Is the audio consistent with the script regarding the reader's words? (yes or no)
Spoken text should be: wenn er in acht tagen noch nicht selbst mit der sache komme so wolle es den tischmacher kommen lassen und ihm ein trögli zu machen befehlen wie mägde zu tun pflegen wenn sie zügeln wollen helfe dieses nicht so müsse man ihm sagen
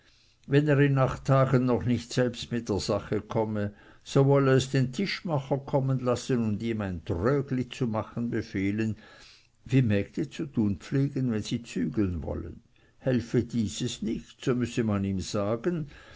yes